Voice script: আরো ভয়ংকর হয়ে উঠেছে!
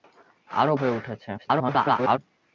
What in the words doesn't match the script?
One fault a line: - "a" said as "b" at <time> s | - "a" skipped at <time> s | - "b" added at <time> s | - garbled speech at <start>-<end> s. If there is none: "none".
- "ভয়ংকর" skipped at 0.7 s
- garbled speech at 1.4-2.2 s